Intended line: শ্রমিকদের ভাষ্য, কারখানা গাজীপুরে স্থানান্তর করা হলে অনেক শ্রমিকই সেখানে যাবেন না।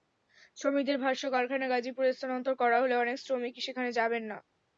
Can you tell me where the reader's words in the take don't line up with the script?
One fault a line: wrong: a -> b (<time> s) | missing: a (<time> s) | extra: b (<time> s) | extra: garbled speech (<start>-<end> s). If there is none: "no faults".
no faults